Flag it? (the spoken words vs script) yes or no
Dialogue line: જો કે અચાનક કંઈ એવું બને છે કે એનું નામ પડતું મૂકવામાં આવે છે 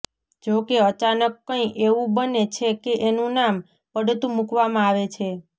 no